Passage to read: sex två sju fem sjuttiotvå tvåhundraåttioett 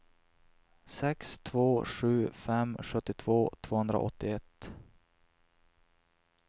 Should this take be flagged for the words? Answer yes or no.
no